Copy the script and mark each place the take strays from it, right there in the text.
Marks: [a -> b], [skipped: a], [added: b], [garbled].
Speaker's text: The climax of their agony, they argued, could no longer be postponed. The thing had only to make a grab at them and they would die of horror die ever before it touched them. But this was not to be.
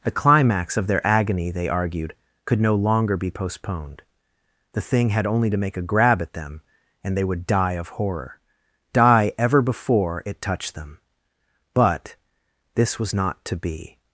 The climax of their agony, they argued, could no longer be postponed. The thing had only to make a grab at them and they would die of horror die ever before it touched them. But this was not to be.